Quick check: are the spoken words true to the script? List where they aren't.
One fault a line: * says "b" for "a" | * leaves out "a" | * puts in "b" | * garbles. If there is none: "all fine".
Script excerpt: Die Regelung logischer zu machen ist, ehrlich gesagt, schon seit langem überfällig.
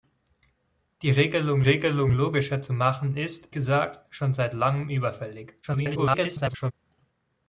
* puts in "Regelung"
* leaves out "ehrlich"
* garbles